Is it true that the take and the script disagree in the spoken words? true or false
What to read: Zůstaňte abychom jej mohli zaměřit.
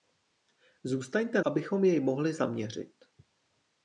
false